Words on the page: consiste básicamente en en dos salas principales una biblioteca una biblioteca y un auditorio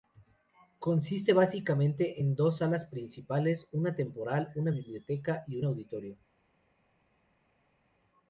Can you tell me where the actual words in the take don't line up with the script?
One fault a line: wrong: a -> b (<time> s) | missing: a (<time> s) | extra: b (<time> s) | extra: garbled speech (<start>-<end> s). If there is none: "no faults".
missing: en (2.4 s)
wrong: biblioteca -> temporal (4.0 s)